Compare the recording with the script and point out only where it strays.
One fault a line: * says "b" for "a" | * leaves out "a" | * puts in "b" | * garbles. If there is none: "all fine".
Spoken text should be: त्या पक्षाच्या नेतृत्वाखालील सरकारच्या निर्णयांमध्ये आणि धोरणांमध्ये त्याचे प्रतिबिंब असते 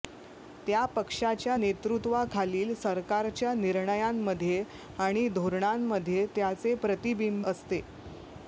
all fine